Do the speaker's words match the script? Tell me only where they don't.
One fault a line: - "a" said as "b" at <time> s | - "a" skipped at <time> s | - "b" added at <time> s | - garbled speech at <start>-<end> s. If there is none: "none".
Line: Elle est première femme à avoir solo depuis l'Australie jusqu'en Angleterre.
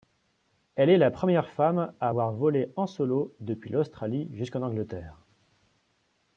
- "la" added at 1.0 s
- "volé en" added at 2.3 s